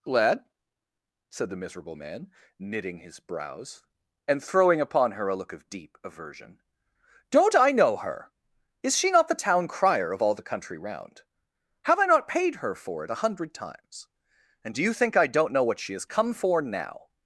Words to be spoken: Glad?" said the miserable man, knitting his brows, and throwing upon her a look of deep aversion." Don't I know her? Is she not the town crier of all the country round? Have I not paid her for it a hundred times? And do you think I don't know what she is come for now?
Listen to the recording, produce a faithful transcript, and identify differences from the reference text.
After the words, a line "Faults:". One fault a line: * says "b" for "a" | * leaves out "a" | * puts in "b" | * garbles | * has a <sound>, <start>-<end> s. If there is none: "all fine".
Lad?" said the miserable man, knitting his brows, and throwing upon her a look of deep aversion." Don't I know her? Is she not the town crier of all the country round? Have I not paid her for it a hundred times? And do you think I don't know what she has come for now?
Faults:
* says "Lad" for "Glad"
* says "has" for "is"